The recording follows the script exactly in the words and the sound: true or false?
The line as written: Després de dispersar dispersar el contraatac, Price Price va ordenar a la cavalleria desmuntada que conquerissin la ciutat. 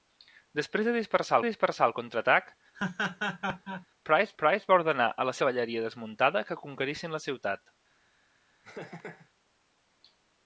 false